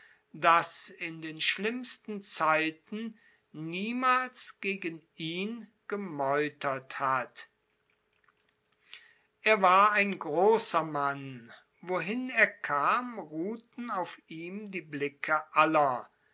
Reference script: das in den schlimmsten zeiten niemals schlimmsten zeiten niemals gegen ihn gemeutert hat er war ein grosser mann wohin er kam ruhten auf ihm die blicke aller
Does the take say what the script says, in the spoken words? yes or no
no